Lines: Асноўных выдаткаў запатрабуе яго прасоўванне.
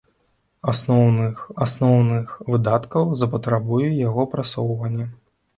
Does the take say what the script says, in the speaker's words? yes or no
no